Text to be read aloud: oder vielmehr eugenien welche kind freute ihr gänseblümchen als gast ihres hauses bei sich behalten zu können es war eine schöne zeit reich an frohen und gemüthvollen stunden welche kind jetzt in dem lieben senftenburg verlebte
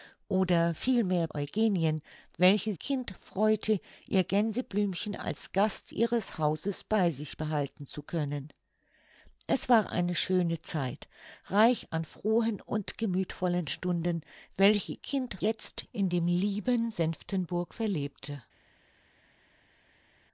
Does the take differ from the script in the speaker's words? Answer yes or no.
no